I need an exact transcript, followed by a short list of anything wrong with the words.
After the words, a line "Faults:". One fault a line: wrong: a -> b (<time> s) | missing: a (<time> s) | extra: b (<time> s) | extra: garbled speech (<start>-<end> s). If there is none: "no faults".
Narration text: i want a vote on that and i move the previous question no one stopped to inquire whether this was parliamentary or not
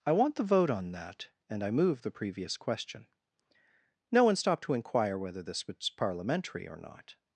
i want the vote on that and i move the previous question no one stopped to inquire whether this was parliamentary or not
Faults:
wrong: a -> the (0.3 s)